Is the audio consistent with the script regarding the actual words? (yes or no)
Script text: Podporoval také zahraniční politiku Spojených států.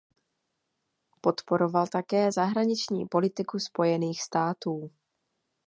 yes